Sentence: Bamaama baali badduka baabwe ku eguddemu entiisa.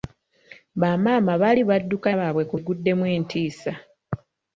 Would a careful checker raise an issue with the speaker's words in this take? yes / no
no